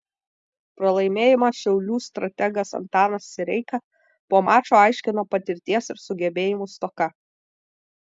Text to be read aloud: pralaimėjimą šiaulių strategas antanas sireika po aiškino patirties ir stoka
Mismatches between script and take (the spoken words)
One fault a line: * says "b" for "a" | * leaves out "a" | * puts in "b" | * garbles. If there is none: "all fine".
* puts in "mačo"
* puts in "sugebėjimų"